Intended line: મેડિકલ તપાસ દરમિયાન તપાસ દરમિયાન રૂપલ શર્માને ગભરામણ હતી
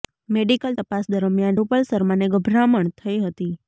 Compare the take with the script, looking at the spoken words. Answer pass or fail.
fail